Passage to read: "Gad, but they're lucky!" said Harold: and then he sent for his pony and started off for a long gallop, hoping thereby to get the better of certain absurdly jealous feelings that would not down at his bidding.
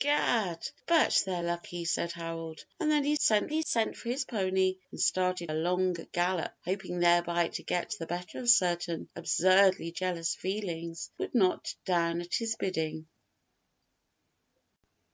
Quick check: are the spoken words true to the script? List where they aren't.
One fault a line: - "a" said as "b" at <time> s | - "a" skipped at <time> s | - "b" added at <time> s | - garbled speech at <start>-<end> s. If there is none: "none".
- "he sent" added at 3.5 s
- "off for" skipped at 5.5 s
- "that" skipped at 11.1 s